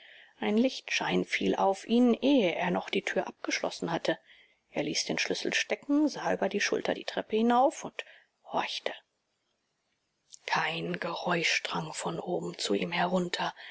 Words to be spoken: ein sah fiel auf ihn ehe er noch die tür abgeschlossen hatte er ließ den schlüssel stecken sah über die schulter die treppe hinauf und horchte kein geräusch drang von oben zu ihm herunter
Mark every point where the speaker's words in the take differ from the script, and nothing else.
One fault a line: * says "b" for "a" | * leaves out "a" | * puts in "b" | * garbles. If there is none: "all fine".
* says "lichtschein" for "sah"